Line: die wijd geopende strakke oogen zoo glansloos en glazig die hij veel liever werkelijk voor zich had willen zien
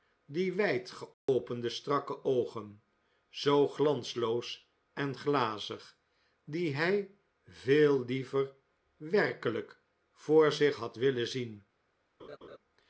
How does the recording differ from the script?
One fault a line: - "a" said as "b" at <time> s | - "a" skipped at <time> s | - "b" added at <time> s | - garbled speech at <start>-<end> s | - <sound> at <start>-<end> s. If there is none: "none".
- dropout at 1.1-1.3 s
- laugh at 12.2-12.6 s